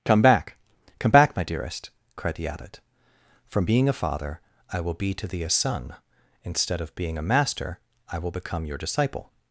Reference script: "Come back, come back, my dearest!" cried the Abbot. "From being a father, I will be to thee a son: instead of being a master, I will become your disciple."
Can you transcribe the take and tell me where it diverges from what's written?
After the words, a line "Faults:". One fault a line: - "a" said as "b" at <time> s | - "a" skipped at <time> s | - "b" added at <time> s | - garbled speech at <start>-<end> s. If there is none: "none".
"Come back, come back, my dearest!" cried the Abbot. "From being a father, I will be to thee a son: instead of being a master, I will become your disciple."
Faults:
none